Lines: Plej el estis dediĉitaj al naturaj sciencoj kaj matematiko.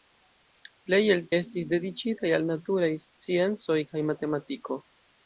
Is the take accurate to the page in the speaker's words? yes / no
yes